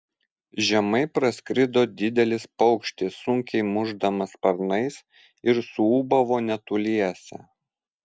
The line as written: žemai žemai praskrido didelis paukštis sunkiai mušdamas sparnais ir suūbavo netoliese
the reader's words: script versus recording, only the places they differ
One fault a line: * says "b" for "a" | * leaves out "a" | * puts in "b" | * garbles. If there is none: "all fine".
* leaves out "žemai"